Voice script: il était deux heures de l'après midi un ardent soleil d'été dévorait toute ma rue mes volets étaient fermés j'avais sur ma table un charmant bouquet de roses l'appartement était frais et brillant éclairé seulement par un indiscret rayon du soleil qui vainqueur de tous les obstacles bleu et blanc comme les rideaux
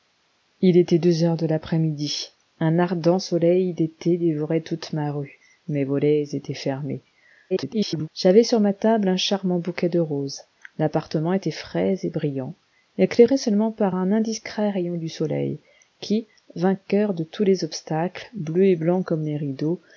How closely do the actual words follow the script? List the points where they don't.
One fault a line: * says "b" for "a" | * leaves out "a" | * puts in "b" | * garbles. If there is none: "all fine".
* garbles